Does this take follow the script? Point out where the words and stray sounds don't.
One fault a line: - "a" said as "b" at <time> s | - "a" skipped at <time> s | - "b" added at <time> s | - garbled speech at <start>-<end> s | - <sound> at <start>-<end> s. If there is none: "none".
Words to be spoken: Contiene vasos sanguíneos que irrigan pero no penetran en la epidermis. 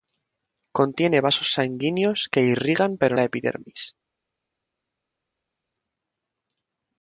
- "no penetran en" skipped at 3.2 s